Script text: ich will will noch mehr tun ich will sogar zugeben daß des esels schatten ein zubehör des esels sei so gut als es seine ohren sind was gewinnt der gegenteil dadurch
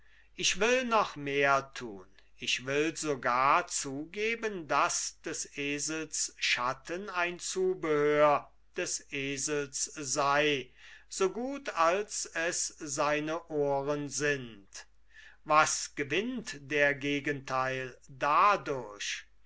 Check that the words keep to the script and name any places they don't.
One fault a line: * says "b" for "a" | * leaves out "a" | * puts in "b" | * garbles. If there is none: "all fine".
* leaves out "will"